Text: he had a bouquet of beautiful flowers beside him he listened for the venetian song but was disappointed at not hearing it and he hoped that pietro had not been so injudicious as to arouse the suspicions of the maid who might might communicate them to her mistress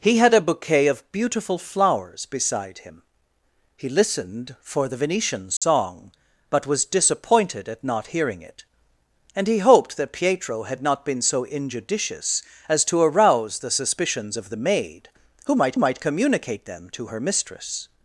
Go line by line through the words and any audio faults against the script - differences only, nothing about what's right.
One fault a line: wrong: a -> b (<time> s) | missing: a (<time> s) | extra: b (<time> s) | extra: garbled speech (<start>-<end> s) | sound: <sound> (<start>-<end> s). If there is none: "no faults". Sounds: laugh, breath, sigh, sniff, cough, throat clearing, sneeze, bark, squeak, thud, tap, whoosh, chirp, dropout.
sound: dropout (5.6-5.6 s)